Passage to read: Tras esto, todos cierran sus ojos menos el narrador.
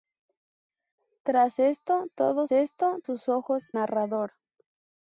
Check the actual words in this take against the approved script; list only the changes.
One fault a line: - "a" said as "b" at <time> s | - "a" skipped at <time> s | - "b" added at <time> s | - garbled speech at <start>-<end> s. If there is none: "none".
- "cierran" said as "esto" at 2.5 s
- "menos el" skipped at 3.7 s